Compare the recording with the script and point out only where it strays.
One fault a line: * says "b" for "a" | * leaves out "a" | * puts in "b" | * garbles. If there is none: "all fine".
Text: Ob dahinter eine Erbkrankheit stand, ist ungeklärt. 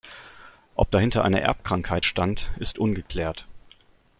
all fine